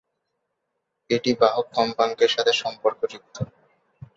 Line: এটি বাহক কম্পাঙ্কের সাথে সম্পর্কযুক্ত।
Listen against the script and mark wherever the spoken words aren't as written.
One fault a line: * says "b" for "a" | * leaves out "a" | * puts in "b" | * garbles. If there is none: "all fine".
all fine